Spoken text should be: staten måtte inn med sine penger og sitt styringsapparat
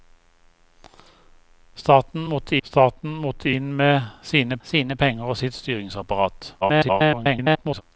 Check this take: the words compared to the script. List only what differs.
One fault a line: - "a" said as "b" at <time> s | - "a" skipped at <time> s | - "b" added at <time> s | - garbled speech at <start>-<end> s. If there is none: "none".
- "staten måtte" added at 2.6 s
- "sine" added at 4.6 s
- garbled speech at 6.6-7.8 s